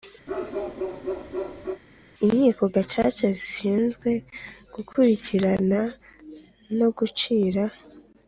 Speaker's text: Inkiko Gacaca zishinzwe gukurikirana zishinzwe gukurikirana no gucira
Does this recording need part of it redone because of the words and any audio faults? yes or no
yes